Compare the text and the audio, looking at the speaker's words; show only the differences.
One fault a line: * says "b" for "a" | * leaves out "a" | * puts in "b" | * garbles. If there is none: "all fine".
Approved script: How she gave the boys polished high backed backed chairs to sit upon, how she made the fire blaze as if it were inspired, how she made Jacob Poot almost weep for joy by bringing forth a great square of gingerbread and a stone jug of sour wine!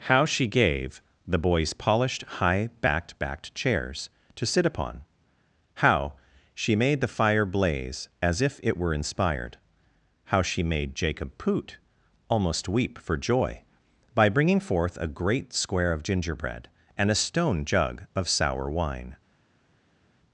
all fine